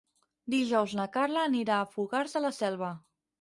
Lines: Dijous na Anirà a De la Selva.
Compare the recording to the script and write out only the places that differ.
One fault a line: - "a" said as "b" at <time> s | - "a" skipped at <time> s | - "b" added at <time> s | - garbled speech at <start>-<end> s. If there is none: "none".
- "Carla" added at 1.2 s
- "Fogars" added at 1.9 s